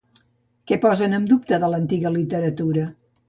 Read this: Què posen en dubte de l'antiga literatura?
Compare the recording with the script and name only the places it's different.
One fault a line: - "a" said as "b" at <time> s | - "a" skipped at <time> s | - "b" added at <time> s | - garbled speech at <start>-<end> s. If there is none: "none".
none